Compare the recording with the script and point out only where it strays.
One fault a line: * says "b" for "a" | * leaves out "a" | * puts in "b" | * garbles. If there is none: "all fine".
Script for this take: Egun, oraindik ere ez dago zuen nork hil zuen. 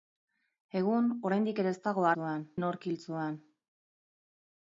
all fine